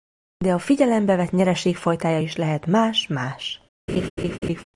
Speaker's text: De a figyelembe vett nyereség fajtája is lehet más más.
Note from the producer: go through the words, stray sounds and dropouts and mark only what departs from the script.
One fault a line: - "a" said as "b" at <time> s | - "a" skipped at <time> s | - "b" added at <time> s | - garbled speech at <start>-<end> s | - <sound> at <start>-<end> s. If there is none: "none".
- laugh at 3.9-4.6 s